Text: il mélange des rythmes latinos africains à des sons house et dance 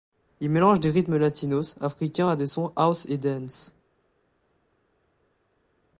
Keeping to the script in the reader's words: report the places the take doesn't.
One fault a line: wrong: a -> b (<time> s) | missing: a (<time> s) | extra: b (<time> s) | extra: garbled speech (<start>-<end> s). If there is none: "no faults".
no faults